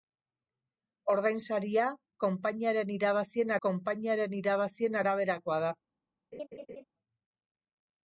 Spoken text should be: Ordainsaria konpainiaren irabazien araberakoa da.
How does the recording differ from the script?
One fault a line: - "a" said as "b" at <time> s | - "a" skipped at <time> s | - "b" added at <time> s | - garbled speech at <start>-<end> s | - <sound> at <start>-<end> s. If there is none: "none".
- "konpainiaren irabazien" added at 3.7 s
- laugh at 6.3-6.8 s